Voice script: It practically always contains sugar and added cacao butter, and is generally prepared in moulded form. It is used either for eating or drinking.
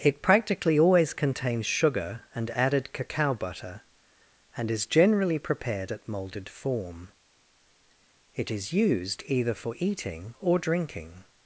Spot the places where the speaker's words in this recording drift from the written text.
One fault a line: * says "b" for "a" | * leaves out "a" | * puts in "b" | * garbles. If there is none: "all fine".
* says "at" for "in"